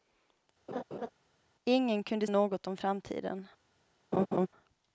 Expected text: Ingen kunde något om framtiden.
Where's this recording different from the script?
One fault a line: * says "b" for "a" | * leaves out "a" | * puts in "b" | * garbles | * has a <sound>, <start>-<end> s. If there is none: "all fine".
* has a laugh, 0.7-1.1 s
* has a laugh, 4.1-4.5 s